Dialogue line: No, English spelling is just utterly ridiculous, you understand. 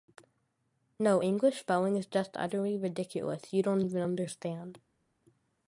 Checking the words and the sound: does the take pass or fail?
fail